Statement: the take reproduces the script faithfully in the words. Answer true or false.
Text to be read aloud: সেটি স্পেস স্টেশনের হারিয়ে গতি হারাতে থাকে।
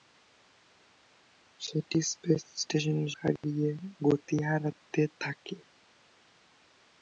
true